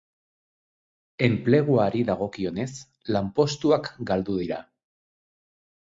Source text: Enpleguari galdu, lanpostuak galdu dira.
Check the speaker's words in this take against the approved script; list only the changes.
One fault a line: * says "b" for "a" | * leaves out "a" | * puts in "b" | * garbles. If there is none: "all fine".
* says "dagokionez" for "galdu"